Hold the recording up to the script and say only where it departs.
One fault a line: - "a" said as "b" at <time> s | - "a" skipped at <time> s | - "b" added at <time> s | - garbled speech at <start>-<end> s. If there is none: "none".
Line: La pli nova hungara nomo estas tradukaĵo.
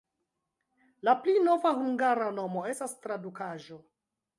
none